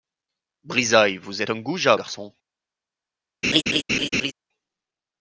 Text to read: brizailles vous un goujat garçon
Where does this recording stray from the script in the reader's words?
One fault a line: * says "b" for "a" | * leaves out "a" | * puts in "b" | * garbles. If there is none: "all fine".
all fine